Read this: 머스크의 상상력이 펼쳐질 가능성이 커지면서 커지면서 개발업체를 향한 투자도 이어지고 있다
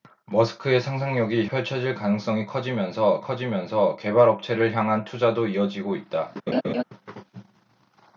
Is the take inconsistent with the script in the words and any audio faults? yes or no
yes